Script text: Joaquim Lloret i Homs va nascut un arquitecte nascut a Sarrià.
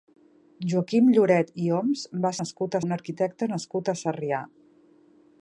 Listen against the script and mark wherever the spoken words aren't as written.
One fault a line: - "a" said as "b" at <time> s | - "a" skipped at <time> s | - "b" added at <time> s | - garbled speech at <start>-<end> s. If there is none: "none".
none